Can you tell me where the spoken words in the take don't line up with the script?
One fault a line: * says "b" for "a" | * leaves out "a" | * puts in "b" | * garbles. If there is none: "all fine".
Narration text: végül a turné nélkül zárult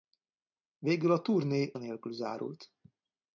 all fine